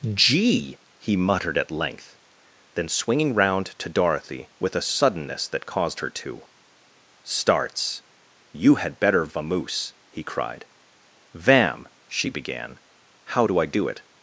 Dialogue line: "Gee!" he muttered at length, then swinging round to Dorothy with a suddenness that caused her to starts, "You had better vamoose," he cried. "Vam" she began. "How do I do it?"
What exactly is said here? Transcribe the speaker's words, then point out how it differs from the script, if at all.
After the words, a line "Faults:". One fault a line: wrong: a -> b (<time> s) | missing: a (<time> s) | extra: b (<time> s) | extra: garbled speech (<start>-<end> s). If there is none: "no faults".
"Gee!" he muttered at length, then swinging round to Dorothy with a suddenness that caused her to starts, "You had better vamoose," he cried. "Vam" she began. "How do I do it?"
Faults:
no faults